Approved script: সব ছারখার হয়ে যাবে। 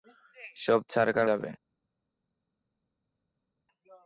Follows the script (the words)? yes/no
no